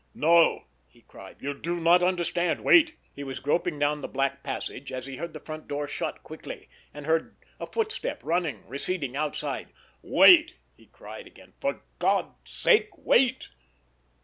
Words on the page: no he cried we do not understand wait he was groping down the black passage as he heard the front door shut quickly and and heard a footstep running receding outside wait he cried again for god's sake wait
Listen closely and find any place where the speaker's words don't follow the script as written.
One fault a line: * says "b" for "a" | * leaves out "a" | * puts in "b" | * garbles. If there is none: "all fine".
* says "you" for "we"
* leaves out "and"